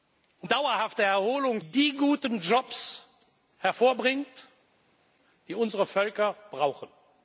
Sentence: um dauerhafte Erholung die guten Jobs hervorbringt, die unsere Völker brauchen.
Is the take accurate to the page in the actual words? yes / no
yes